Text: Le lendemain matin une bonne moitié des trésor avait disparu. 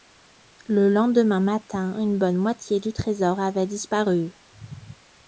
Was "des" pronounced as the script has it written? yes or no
no